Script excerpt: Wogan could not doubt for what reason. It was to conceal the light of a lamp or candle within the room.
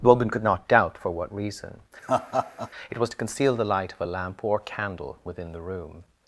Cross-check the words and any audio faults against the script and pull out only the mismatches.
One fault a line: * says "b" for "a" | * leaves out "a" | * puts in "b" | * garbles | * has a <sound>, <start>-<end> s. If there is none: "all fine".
* says "The woman" for "Wogan"
* has a laugh, 2.0-2.7 s